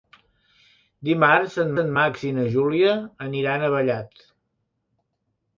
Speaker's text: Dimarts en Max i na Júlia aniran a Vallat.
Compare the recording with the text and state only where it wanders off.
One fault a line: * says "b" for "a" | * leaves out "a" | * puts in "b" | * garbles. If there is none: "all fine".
* puts in "en"